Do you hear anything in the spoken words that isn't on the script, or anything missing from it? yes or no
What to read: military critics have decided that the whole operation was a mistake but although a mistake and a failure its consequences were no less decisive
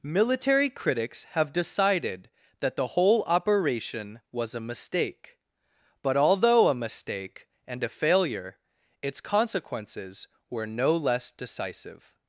no